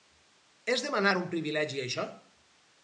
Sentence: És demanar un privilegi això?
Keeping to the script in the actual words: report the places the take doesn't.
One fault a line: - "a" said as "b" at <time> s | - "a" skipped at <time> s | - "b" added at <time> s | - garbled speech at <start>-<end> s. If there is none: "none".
none